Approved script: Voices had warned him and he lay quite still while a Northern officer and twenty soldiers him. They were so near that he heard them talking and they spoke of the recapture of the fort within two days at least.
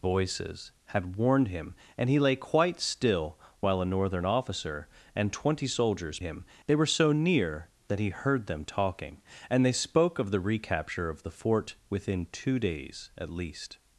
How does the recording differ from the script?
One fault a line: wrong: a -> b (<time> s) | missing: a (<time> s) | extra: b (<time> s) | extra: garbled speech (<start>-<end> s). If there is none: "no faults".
no faults